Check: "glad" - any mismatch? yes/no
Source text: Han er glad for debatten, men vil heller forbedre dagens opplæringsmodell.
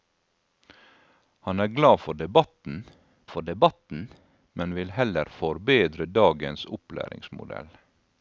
no